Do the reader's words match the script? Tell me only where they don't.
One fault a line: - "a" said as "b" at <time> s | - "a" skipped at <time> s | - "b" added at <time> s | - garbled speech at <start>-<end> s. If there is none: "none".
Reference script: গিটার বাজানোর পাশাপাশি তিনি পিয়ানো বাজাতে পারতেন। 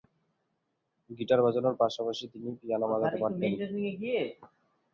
none